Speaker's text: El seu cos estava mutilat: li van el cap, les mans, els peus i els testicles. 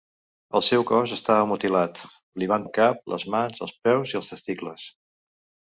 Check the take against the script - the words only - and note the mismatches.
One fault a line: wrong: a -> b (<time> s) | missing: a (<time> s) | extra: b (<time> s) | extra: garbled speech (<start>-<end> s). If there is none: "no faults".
no faults